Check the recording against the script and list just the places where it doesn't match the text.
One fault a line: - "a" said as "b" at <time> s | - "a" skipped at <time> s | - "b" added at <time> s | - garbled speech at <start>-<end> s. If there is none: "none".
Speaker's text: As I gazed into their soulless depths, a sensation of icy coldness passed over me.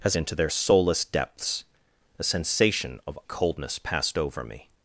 - "I gazed" skipped at 0.1 s
- "icy" skipped at 3.2 s